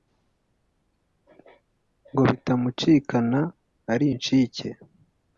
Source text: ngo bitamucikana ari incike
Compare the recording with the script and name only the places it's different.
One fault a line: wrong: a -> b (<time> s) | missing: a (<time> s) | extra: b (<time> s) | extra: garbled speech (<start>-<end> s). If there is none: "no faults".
no faults